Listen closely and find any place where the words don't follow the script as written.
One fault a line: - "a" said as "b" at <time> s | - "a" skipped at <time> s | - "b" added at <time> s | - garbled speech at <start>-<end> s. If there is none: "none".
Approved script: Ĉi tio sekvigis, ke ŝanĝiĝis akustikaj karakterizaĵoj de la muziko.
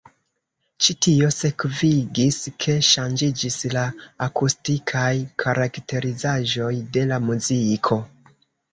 - "la" added at 3.7 s